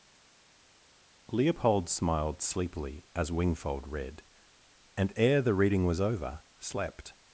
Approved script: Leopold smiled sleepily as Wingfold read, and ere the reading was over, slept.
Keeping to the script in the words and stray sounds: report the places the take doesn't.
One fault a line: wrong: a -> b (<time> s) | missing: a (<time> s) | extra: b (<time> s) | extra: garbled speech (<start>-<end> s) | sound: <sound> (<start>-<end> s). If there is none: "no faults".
no faults